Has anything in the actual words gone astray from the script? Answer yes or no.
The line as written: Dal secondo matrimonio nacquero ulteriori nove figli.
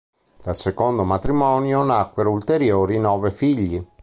no